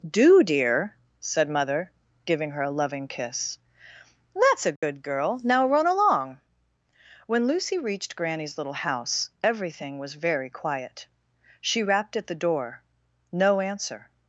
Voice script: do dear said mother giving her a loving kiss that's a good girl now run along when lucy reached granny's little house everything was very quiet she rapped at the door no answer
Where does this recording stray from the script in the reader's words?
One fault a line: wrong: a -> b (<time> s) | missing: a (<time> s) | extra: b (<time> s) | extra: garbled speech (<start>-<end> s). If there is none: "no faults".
no faults